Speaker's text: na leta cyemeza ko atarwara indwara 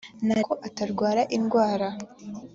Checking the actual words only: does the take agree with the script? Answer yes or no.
no